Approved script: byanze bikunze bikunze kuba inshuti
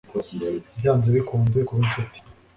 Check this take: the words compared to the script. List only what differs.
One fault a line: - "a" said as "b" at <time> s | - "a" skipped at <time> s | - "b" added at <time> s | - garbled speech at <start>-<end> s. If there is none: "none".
- "bikunze" skipped at 1.6 s